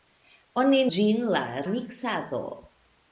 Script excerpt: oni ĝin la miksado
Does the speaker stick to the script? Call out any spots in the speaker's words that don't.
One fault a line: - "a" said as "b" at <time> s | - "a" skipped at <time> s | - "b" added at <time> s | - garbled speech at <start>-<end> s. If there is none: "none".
none